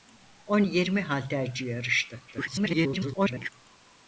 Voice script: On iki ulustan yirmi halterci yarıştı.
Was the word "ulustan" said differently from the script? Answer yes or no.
yes